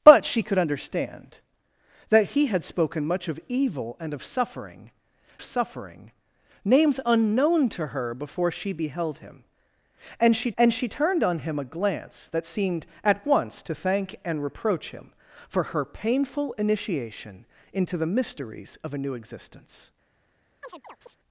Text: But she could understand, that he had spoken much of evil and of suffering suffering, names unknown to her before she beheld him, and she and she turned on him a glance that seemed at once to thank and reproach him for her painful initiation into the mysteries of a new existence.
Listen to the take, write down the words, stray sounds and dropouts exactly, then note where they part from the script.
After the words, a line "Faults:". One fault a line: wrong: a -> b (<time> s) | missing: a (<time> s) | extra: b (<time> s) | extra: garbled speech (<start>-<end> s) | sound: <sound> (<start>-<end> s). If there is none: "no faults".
But she could understand, that he had spoken much of evil and of suffering suffering, names unknown to her before she beheld him, and she and she turned on him a glance that seemed at once to thank and reproach him for her painful initiation into the mysteries of a new existence.
Faults:
sound: chirp (20.6-21.2 s)